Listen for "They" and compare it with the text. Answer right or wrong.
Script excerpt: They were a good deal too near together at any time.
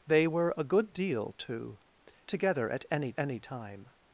right